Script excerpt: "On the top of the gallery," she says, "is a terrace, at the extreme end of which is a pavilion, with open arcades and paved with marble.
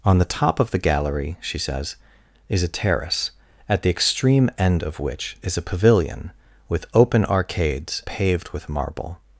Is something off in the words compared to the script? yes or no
yes